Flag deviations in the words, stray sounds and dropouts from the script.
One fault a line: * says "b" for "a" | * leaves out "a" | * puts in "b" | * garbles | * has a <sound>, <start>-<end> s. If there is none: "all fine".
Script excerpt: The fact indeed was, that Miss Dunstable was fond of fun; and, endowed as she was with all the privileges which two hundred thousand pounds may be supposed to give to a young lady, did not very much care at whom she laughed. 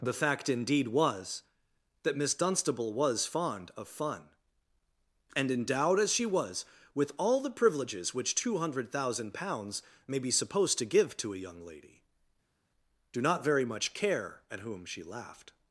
* says "do" for "did"